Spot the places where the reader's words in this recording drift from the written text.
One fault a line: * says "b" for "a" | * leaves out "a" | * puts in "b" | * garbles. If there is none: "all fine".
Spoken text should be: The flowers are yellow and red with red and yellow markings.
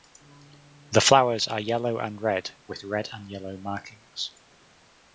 all fine